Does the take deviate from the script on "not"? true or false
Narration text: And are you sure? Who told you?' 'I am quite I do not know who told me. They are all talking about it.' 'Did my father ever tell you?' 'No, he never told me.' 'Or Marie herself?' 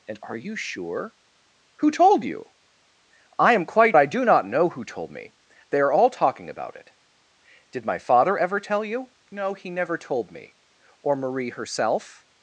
false